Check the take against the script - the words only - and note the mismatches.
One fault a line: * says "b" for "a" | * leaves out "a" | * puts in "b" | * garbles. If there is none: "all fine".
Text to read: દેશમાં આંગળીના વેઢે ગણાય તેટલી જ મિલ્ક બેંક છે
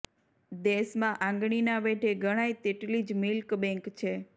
all fine